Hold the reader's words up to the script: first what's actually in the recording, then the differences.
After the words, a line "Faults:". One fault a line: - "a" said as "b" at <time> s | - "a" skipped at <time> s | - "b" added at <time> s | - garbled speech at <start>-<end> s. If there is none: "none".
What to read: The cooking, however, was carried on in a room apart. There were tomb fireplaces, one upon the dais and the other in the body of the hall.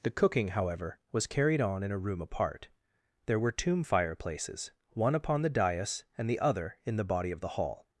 The cooking, however, was carried on in a room apart. There were tomb fireplaces, one upon the dais and the other in the body of the hall.
Faults:
none